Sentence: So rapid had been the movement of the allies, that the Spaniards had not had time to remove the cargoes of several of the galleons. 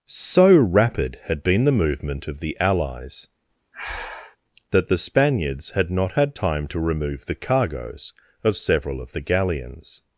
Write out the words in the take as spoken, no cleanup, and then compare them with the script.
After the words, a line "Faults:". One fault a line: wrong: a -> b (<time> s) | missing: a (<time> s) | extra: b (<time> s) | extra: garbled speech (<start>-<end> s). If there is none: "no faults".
So rapid had been the movement of the allies, that the Spaniards had not had time to remove the cargoes of several of the galleons.
Faults:
no faults